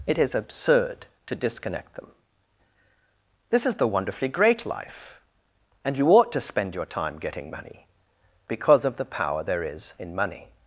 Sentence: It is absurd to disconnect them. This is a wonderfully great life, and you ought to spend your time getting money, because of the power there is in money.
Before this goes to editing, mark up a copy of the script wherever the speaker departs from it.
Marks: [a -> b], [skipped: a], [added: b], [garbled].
It is absurd to disconnect them. This is [a -> the] wonderfully great life, and you ought to spend your time getting money, because of the power there is in money.